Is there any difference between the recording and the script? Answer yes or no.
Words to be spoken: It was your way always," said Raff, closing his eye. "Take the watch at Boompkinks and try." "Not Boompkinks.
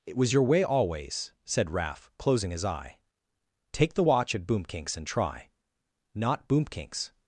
no